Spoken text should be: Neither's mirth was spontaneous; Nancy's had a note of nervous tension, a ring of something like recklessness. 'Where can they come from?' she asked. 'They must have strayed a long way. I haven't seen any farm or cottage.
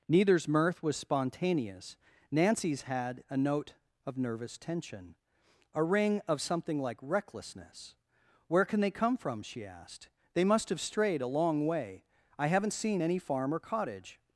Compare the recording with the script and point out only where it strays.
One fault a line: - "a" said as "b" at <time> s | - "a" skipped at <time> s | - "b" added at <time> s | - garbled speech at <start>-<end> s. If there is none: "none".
none